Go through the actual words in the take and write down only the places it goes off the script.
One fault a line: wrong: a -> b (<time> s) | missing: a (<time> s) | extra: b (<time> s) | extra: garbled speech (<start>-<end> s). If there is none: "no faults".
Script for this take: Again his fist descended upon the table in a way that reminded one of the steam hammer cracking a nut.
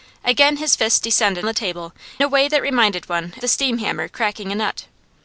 missing: upon (1.5 s)
missing: in (1.9 s)
missing: of (3.3 s)